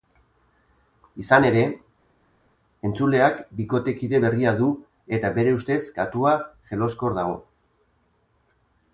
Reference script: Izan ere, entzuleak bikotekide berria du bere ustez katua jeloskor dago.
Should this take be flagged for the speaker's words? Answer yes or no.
yes